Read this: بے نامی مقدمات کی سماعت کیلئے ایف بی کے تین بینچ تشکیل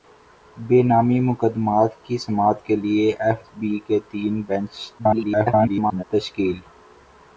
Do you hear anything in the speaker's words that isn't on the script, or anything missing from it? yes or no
yes